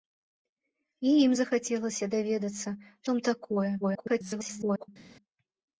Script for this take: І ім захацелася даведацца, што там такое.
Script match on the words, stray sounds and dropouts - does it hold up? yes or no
no